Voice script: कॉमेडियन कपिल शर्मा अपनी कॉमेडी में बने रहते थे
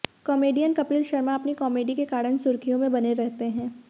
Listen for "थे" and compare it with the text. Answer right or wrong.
wrong